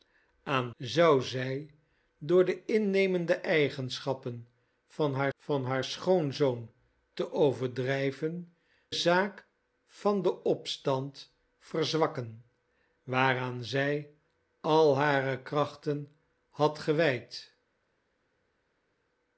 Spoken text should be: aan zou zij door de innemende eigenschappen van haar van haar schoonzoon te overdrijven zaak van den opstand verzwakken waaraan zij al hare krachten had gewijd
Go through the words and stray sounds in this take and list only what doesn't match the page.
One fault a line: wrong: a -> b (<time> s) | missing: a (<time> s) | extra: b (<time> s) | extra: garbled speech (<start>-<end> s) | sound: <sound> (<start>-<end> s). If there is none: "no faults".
no faults